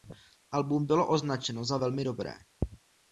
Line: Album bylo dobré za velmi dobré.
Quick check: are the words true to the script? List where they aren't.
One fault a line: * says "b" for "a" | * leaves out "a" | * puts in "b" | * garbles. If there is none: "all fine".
* says "označeno" for "dobré"